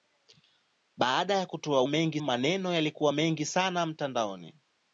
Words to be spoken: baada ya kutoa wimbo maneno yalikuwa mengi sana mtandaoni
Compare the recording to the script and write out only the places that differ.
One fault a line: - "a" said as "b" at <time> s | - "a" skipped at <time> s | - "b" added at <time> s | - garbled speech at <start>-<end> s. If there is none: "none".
- "wimbo" said as "mengi" at 1.9 s